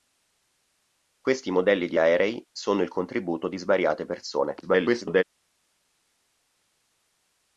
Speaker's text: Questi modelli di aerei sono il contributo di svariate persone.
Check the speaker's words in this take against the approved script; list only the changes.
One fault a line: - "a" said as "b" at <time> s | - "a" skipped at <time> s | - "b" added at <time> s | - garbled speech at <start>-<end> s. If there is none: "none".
- garbled speech at 4.6-5.2 s